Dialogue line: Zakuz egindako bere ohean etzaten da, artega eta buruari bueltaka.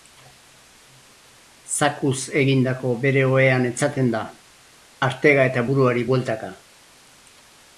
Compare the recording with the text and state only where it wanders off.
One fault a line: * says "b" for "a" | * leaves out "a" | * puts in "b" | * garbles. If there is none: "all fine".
all fine